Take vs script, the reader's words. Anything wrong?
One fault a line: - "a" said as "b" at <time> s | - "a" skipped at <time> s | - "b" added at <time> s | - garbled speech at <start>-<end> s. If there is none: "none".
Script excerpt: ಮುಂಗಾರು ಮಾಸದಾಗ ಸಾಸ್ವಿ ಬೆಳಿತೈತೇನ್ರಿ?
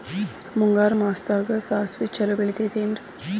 - "ಛಲೋ" added at 2.2 s